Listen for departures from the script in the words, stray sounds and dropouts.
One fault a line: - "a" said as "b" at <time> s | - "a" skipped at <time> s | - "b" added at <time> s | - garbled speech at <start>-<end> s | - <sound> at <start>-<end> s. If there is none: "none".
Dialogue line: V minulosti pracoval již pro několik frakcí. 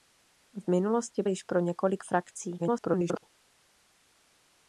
- "pracoval" skipped at 1.2 s
- garbled speech at 2.6-3.2 s